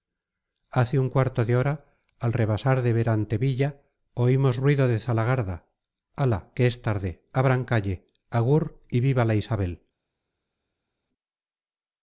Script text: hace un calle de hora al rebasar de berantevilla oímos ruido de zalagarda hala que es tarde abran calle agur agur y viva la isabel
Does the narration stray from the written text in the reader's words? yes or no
yes